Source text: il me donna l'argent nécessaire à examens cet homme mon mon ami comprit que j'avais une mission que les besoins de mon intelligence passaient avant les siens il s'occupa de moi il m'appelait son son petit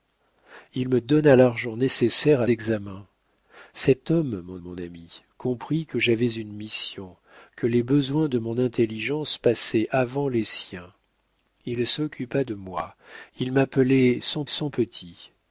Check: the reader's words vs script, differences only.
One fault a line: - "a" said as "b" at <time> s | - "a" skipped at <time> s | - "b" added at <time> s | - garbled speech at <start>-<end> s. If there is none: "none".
none